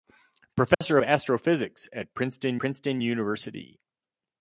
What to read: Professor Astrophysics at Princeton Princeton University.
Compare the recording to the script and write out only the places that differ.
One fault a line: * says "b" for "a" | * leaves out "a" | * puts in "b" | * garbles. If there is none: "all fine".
all fine